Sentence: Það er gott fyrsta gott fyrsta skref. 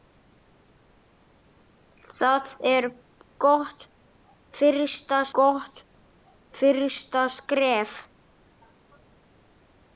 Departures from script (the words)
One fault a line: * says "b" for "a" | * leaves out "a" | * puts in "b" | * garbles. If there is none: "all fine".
all fine